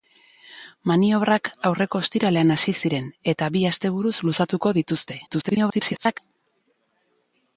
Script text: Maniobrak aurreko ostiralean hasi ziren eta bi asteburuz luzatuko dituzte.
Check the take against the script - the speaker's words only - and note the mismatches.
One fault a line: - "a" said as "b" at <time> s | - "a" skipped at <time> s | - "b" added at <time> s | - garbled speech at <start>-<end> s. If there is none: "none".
- garbled speech at 5.3-6.2 s